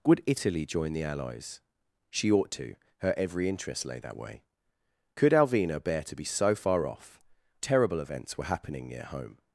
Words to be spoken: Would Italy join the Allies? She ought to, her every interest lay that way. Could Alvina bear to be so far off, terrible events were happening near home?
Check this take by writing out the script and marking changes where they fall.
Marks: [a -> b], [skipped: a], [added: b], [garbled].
Would Italy join the Allies? She ought to, her every interest lay that way. Could Alvina bear to be so far off, terrible events were happening near home?